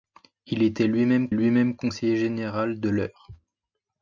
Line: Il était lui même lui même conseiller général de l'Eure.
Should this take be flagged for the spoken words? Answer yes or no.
no